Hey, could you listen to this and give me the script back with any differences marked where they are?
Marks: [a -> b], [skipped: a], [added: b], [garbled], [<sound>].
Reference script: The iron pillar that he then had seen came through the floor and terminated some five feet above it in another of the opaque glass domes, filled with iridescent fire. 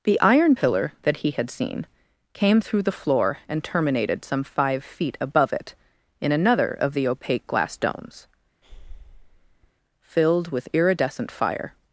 The iron pillar that he [skipped: then] had seen came through the floor and terminated some five feet above it in another of the opaque glass domes, [breath] filled with iridescent fire.